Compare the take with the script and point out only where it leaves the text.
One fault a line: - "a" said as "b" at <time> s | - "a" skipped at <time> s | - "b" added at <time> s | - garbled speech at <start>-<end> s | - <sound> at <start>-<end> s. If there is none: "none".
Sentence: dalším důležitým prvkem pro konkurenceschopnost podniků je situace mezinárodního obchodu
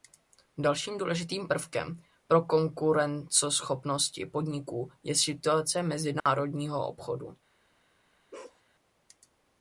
- dropout at 6.2-6.3 s
- bark at 8.3-8.6 s